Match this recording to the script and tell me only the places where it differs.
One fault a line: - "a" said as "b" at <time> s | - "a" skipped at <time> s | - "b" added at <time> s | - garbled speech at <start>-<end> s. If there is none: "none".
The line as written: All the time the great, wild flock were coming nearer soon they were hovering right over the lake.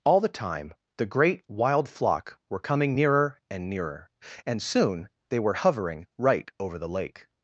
- "and nearer and" added at 3.5 s